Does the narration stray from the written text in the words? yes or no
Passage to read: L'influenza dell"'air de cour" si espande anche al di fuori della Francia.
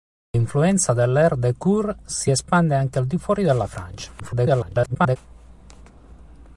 yes